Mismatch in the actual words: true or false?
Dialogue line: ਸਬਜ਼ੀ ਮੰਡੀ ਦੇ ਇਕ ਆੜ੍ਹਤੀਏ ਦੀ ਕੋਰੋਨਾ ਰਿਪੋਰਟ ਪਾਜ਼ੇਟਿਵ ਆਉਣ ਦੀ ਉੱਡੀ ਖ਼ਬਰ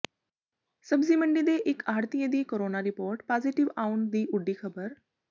false